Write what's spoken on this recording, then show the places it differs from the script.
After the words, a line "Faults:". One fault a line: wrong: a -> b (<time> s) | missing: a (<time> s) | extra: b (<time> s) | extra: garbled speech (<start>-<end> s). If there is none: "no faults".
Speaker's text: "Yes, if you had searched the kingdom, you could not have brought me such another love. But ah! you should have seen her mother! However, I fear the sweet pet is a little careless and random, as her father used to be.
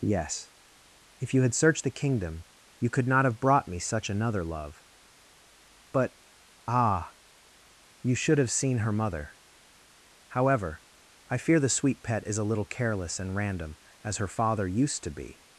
"Yes, if you had searched the kingdom, you could not have brought me such another love. But ah! you should have seen her mother! However, I fear the sweet pet is a little careless and random, as her father used to be.
Faults:
no faults